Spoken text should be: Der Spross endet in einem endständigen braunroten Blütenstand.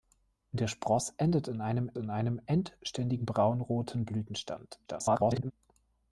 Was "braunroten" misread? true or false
false